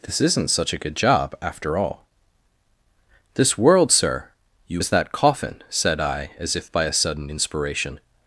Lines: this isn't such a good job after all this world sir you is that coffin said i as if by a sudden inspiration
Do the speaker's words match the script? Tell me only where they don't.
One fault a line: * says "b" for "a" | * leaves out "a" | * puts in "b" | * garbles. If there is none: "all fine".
all fine